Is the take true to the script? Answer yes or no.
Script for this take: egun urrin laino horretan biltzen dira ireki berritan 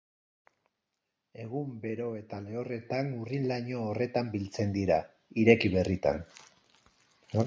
no